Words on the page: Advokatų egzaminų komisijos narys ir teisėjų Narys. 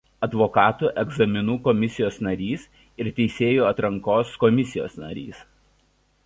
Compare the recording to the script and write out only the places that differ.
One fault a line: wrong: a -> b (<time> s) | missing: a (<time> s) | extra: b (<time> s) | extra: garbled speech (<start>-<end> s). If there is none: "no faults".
extra: Atrankos komisijos (3.7 s)